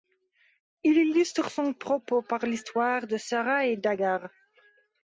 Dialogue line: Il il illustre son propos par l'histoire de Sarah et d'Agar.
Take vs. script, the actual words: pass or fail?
fail